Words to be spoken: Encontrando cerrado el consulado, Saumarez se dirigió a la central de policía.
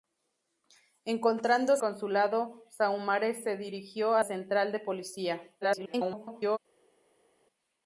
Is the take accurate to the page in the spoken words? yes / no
no